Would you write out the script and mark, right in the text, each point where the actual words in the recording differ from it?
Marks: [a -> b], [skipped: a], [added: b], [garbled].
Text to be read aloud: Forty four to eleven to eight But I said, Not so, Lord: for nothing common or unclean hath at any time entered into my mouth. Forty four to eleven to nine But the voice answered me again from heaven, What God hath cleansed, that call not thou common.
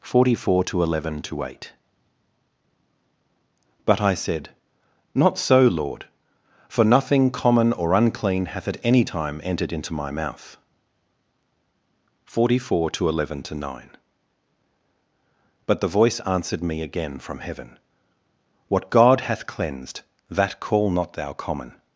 Forty four to eleven to eight But I said, Not so, Lord: for nothing common or unclean hath at any time entered into my mouth. Forty four to eleven to nine But the voice answered me again from heaven, What God hath cleansed, that call not thou common.